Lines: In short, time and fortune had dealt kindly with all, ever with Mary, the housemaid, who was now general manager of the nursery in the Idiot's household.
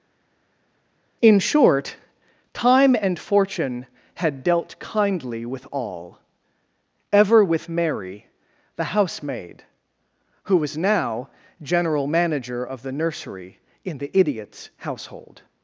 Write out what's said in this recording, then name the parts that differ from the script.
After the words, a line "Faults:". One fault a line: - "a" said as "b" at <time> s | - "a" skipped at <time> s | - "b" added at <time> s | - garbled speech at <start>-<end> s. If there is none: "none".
In short, time and fortune had dealt kindly with all, ever with Mary, the housemaid, who was now general manager of the nursery in the Idiot's household.
Faults:
none